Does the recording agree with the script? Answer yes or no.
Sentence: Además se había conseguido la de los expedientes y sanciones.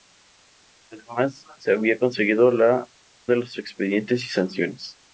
yes